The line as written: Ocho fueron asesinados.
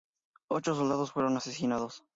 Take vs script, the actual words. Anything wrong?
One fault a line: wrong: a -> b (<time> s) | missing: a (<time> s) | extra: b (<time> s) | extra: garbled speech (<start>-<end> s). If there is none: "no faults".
extra: soldados (0.7 s)